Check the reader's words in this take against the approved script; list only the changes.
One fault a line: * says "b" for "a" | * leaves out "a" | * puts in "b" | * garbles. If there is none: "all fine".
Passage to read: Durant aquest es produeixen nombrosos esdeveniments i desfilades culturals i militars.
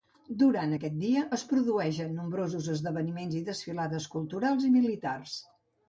* puts in "dia"